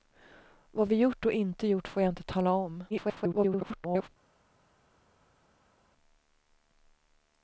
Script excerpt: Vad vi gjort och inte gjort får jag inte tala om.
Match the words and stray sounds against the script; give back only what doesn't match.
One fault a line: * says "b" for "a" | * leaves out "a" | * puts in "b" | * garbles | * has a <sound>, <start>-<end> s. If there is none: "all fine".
* garbles